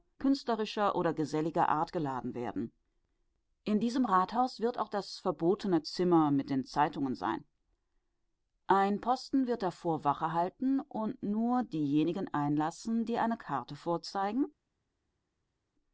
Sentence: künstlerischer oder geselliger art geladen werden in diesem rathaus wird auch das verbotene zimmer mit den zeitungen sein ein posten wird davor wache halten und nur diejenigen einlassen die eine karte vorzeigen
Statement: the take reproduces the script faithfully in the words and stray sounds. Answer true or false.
true